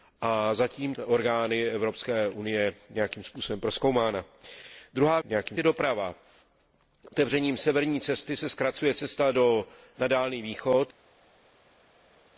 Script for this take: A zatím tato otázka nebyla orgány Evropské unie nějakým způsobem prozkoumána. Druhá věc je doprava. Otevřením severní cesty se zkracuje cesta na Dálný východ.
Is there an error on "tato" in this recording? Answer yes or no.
yes